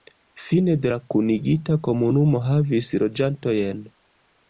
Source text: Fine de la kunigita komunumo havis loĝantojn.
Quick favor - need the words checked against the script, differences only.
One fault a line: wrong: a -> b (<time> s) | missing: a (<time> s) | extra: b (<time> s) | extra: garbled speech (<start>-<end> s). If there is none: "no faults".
no faults